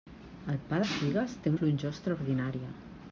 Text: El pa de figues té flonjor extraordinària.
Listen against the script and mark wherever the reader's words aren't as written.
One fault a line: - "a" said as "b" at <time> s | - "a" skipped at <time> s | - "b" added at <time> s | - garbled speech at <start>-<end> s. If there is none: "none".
none